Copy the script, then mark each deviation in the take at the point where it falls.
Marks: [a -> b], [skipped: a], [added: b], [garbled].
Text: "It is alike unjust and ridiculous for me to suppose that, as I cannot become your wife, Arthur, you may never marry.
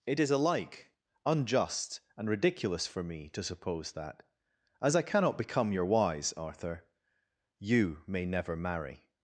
"It is alike unjust and ridiculous for me to suppose that, as I cannot become your [wife, -> wise] Arthur, you may never marry.